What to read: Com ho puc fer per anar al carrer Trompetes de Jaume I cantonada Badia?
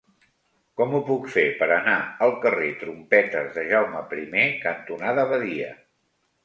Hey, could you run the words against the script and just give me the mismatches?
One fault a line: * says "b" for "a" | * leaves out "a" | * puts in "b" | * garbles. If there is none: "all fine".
all fine